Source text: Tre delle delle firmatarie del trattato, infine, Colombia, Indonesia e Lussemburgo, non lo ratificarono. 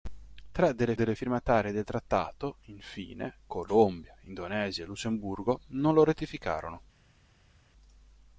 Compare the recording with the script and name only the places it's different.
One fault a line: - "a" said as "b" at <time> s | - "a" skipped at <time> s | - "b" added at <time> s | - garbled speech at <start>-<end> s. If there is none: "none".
none